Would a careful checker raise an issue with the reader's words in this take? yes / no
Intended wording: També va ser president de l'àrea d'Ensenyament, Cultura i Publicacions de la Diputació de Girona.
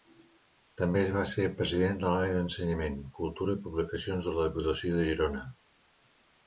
no